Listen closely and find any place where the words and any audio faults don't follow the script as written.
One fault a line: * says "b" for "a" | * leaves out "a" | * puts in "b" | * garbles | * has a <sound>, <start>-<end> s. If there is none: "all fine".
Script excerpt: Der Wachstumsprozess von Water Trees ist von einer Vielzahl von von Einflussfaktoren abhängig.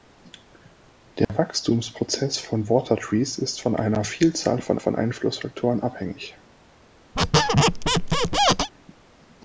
* has a dropout, 1.2-1.3 s
* has a squeak, 7.1-8.7 s